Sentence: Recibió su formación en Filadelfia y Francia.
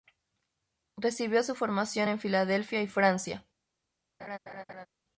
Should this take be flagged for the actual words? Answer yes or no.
no